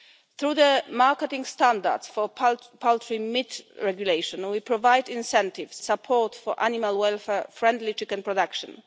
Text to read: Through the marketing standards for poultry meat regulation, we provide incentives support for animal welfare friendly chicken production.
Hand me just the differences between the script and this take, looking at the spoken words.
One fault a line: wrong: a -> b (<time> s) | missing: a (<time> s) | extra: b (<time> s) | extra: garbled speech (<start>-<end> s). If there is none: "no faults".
no faults